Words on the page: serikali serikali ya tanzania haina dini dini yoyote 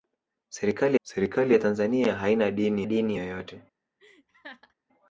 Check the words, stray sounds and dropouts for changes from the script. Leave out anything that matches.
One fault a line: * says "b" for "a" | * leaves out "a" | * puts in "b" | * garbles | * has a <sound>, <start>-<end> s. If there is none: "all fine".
* has a laugh, 4.0-4.7 s